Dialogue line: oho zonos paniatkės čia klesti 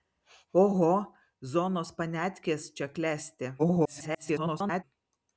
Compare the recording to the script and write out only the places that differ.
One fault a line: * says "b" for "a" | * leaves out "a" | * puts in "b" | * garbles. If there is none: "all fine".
* garbles